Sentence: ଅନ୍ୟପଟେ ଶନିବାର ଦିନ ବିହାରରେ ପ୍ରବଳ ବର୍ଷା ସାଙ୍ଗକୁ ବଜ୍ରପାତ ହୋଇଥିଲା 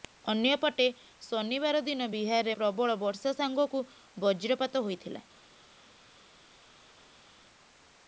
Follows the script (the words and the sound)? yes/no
yes